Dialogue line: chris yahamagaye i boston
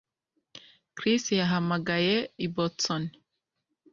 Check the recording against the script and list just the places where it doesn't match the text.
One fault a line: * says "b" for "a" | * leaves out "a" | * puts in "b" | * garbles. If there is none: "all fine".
all fine